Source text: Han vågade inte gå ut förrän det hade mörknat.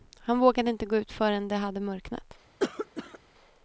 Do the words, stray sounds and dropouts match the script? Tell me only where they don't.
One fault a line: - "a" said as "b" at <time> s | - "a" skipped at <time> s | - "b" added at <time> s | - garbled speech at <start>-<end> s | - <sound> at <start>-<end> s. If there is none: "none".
- cough at 2.6-3.2 s